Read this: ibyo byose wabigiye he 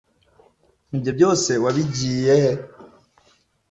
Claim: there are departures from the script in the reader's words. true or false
false